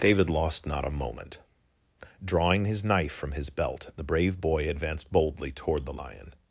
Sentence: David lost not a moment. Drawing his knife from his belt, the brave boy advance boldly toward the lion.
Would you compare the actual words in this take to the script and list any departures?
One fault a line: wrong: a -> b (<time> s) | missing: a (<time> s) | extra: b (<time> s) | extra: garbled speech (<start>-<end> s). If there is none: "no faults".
wrong: advance -> advanced (4.7 s)